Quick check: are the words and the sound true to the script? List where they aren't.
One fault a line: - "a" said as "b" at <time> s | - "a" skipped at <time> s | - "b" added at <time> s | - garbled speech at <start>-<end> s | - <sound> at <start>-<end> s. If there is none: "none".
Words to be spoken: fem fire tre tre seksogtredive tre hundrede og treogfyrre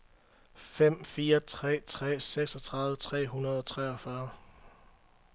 none